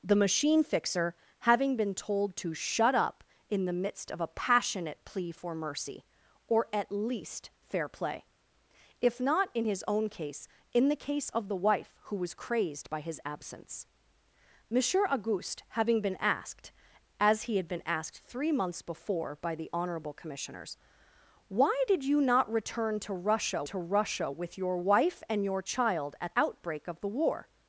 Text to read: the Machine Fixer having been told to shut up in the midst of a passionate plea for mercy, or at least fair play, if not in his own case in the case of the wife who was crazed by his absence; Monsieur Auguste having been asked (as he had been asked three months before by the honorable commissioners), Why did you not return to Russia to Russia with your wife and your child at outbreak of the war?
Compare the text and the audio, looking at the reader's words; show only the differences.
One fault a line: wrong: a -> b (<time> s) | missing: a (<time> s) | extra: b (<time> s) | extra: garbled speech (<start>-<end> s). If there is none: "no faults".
no faults